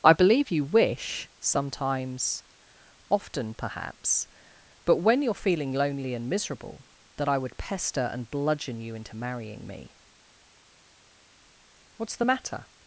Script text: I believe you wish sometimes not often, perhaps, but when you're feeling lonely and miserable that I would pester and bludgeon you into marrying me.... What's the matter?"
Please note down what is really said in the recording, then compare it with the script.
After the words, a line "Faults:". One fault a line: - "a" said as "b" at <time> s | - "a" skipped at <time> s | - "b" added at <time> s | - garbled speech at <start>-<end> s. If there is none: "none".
I believe you wish sometimes often, perhaps, but when you're feeling lonely and miserable that I would pester and bludgeon you into marrying me.... What's the matter?"
Faults:
- "not" skipped at 2.4 s